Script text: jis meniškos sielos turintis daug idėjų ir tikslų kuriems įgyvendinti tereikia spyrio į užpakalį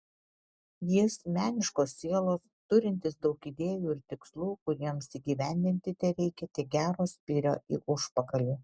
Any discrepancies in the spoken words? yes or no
yes